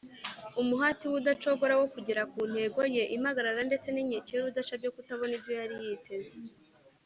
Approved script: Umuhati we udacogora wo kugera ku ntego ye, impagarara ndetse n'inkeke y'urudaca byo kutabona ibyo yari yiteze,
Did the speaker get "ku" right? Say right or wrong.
right